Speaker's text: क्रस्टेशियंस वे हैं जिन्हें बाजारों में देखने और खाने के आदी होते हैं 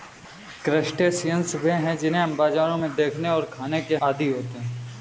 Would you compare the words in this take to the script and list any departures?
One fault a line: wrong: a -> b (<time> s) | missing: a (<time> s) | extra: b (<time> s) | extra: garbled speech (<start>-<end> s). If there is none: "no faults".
no faults